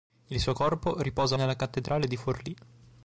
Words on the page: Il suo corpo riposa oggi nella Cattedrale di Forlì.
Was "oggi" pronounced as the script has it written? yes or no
no